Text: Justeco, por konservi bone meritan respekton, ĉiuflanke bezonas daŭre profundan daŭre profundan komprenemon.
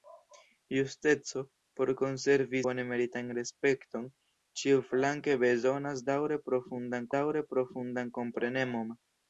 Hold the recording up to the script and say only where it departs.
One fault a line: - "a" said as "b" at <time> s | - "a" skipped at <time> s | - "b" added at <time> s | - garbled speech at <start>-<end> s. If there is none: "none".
none